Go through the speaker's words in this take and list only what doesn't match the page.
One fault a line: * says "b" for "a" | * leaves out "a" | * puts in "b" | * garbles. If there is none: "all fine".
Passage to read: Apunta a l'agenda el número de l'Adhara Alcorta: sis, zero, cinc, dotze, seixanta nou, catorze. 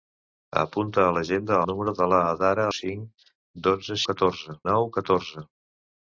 * leaves out "el"
* leaves out "Alcorta sis zero"
* says "catorze" for "seixanta"